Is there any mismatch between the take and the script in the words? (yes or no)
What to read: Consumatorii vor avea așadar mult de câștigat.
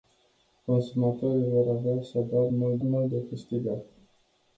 yes